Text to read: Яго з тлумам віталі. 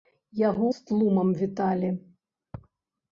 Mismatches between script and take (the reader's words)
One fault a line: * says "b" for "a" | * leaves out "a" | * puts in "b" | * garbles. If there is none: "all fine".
all fine